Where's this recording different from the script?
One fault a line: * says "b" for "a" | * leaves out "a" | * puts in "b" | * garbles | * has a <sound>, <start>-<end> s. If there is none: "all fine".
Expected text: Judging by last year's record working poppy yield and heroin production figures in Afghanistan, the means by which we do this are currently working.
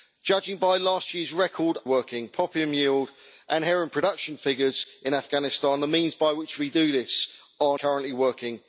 all fine